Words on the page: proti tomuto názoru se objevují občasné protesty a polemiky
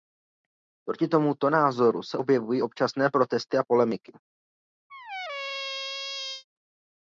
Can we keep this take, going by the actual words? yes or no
yes